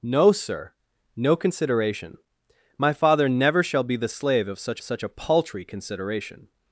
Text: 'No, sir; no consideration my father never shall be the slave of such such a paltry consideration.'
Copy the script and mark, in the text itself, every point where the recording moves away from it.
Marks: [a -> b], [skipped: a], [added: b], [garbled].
'No, sir; no consideration my father never shall be the slave of such such a paltry consideration.'